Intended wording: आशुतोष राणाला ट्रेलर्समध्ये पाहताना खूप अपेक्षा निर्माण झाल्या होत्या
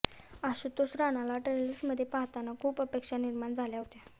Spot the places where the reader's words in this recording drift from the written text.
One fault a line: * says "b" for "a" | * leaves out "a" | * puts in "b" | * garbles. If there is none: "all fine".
all fine